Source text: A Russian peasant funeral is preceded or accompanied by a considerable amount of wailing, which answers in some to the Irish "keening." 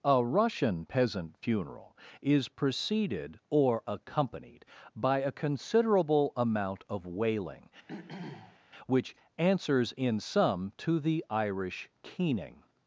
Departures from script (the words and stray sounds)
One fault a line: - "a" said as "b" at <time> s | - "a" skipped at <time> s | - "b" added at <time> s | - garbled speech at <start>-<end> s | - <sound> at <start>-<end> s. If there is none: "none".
- throat clearing at 7.9-8.6 s